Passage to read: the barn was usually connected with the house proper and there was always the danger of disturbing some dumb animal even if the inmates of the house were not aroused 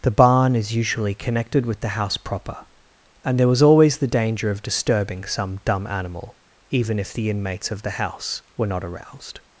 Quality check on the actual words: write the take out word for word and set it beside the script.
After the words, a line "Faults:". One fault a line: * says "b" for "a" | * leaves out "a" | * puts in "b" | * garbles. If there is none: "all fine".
the barn is usually connected with the house proper and there was always the danger of disturbing some dumb animal even if the inmates of the house were not aroused
Faults:
* says "is" for "was"